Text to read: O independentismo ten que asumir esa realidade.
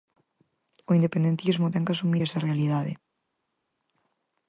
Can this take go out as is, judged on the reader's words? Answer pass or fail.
pass